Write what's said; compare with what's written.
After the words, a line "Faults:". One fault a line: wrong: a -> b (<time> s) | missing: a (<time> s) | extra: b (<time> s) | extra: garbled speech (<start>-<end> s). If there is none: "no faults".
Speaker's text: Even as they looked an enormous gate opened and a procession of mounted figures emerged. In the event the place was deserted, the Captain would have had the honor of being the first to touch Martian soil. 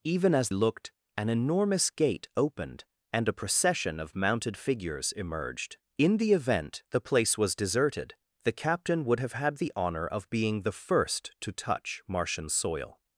Even as looked an enormous gate opened and a procession of mounted figures emerged. In the event the place was deserted, the Captain would have had the honor of being the first to touch Martian soil.
Faults:
missing: they (0.5 s)